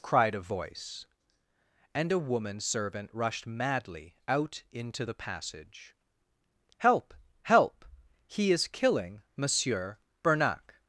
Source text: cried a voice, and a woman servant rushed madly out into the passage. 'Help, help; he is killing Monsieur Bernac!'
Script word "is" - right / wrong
right